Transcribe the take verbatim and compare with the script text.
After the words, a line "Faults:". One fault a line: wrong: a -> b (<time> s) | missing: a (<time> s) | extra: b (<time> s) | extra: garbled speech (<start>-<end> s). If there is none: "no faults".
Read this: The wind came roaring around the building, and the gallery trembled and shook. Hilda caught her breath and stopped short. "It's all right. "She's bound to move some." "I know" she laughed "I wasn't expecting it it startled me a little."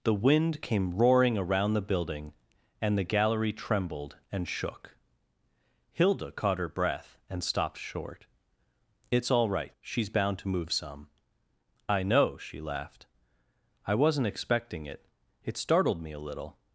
The wind came roaring around the building, and the gallery trembled and shook. Hilda caught her breath and stopped short. "It's all right. "She's bound to move some." "I know" she laughed "I wasn't expecting it it startled me a little."
Faults:
no faults